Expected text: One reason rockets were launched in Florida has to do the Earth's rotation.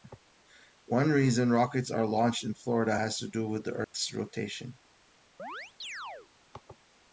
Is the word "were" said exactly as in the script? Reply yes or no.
no